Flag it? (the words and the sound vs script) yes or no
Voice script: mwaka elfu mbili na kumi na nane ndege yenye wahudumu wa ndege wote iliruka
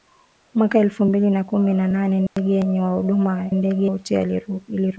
yes